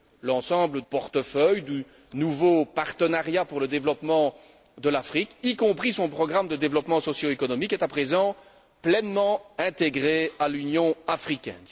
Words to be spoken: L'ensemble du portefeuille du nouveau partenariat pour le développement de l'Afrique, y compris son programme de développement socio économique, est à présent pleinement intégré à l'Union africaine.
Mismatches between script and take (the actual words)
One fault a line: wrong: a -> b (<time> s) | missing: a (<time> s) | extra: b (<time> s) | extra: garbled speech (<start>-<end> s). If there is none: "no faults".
missing: du (0.8 s)